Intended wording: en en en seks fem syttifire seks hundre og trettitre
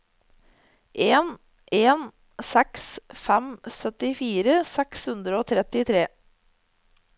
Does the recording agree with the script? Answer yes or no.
no